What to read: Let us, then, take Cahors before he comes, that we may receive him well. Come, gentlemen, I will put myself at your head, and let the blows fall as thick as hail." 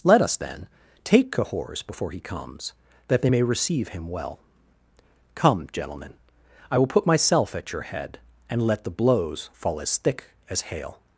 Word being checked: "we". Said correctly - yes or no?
no